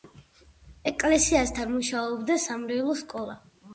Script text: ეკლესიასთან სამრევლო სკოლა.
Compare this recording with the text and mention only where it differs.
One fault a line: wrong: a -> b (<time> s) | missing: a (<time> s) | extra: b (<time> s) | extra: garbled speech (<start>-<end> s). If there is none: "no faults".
extra: მუშაობდა (1.8 s)